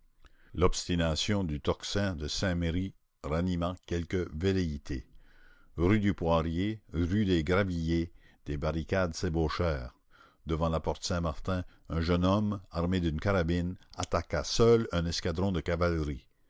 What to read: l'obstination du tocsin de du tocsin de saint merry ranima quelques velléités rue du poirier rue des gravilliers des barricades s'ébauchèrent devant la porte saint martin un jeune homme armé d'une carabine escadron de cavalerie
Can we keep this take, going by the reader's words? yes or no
no